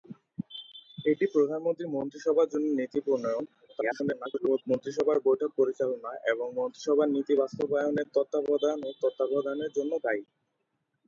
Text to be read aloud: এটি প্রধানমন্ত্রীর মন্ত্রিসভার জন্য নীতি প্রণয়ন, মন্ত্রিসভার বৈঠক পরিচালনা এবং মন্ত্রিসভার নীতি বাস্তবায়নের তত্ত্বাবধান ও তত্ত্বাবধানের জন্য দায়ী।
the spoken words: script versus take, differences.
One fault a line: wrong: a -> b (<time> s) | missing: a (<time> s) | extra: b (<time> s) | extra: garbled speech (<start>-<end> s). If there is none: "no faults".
extra: garbled speech (3.7-4.6 s)